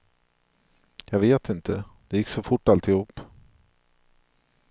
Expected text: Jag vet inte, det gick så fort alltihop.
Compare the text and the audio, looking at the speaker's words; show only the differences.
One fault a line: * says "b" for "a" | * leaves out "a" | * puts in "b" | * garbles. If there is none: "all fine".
all fine